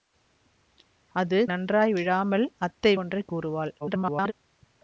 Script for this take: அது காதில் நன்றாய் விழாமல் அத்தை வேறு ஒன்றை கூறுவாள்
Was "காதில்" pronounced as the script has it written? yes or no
no